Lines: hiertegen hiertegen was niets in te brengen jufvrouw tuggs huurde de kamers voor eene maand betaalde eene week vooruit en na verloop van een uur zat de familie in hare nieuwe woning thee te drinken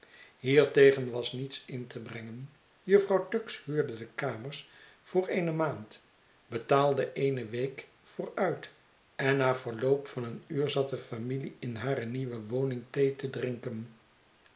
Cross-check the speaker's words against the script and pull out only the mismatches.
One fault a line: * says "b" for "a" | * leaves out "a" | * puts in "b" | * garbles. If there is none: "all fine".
* leaves out "hiertegen"